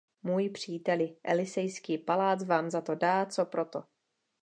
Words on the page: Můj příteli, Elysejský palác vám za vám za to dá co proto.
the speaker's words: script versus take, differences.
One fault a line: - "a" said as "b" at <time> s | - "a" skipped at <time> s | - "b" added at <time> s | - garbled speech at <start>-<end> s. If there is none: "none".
- "vám za" skipped at 2.8 s